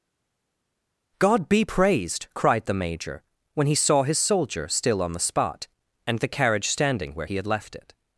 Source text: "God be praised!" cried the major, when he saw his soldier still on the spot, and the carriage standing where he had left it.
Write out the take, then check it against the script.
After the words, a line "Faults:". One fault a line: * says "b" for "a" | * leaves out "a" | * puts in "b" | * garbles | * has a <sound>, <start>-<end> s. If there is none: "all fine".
"God be praised!" cried the major, when he saw his soldier still on the spot, and the carriage standing where he had left it.
Faults:
all fine